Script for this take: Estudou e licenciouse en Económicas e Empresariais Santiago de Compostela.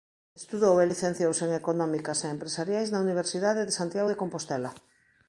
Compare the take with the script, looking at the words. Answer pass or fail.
fail